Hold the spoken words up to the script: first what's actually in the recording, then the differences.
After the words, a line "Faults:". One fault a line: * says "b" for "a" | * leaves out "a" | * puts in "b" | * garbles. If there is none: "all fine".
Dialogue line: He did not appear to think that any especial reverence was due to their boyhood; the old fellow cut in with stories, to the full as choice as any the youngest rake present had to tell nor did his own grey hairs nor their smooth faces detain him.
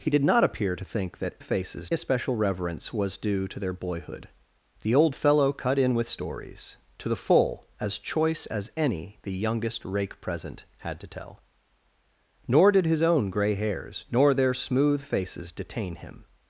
He did not appear to think that faces especial reverence was due to their boyhood; the old fellow cut in with stories, to the full as choice as any the youngest rake present had to tell nor did his own grey hairs nor their smooth faces detain him.
Faults:
* says "faces" for "any"